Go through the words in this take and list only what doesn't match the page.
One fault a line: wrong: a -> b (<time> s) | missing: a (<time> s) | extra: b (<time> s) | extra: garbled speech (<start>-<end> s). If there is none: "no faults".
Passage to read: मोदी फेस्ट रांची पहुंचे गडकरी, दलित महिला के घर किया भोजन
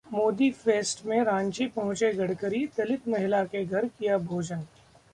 extra: में (1.1 s)